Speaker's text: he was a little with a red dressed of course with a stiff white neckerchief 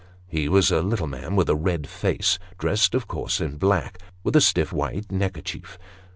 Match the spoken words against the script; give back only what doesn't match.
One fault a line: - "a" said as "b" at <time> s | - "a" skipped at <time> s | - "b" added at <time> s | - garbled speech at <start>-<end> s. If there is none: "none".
- "man" added at 1.1 s
- "face" added at 1.9 s
- "in black" added at 3.4 s